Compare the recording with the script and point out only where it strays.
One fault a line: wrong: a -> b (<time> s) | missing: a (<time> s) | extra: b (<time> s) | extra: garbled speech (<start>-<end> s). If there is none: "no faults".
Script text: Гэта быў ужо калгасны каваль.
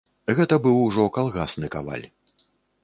no faults